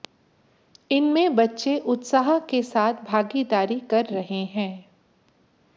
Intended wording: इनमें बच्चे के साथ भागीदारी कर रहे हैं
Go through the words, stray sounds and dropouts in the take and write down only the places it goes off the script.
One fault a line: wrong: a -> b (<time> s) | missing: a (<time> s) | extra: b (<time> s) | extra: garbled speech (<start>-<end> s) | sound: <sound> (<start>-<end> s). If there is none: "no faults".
extra: उत्साह (1.9 s)